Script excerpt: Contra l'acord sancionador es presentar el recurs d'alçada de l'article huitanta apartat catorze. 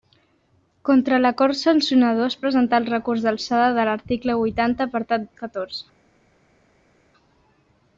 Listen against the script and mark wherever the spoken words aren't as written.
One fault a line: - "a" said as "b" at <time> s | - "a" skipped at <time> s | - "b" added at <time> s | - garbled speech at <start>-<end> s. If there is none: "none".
none